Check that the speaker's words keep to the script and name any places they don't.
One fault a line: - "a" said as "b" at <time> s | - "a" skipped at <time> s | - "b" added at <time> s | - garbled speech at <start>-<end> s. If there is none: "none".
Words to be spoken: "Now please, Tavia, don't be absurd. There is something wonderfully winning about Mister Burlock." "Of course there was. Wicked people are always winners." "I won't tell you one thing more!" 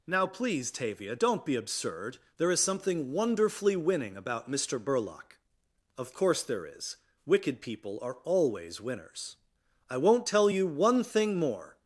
- "was" said as "is" at 6.6 s